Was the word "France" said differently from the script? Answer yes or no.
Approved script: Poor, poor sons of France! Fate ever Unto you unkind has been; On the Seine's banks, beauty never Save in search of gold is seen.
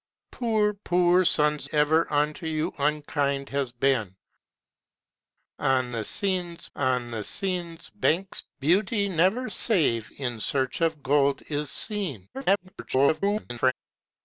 yes